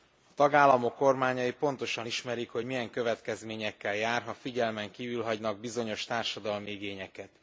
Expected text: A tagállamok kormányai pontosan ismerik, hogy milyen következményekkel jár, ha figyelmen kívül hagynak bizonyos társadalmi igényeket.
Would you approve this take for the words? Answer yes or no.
yes